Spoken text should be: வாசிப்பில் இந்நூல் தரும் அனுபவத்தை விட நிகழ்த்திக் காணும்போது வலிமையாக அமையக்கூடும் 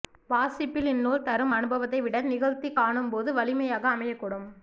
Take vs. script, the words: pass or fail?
pass